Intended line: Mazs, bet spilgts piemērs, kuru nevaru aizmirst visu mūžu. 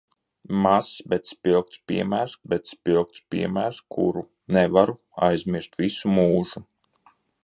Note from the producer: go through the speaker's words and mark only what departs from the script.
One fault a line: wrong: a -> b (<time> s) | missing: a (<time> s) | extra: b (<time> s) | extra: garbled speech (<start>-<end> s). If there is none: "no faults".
extra: bet spilgts piemērs (2.5 s)